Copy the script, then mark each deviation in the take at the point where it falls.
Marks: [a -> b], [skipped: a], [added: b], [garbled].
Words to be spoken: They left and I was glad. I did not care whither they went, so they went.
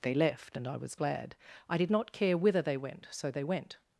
They left and I was glad. I did not care whither they went, so they went.